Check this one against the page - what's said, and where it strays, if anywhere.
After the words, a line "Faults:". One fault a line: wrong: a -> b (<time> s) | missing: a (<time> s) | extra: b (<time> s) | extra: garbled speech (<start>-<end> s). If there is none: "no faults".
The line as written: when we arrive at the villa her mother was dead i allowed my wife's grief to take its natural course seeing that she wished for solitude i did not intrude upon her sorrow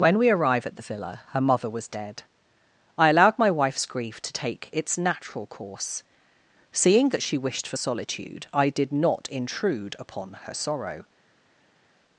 when we arrive at the villa her mother was dead i allowed my wife's grief to take its natural course seeing that she wished for solitude i did not intrude upon her sorrow
Faults:
no faults